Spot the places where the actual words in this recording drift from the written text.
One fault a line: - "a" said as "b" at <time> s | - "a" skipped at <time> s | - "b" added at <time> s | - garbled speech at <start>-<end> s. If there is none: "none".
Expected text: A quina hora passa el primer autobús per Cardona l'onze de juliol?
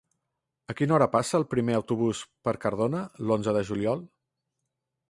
none